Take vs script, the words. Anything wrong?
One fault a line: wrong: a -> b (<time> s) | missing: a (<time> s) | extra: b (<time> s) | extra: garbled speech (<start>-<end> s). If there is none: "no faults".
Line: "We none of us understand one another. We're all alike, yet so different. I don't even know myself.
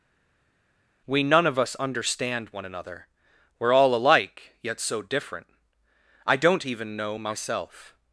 no faults